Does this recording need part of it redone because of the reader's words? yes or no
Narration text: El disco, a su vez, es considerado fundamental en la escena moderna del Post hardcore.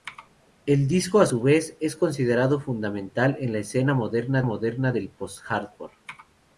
yes